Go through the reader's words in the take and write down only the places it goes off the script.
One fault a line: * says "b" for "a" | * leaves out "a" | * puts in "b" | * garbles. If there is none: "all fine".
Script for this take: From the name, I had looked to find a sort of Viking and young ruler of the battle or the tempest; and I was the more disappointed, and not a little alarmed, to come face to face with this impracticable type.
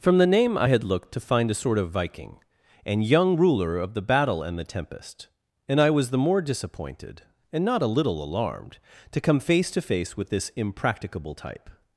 * says "and" for "or"